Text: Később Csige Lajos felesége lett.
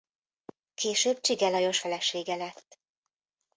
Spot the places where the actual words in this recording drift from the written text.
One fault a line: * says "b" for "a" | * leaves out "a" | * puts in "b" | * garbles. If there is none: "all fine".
all fine